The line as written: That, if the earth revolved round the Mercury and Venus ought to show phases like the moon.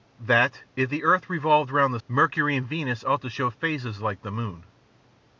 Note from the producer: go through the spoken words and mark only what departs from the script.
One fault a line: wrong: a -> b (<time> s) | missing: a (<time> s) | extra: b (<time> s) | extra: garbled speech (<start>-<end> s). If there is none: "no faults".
no faults